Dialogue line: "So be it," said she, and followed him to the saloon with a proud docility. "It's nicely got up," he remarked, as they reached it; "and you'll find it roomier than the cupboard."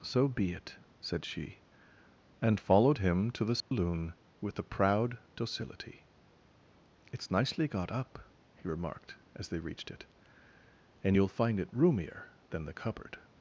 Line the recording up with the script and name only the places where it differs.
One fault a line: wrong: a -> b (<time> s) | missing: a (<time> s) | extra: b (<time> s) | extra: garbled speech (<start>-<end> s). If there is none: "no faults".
no faults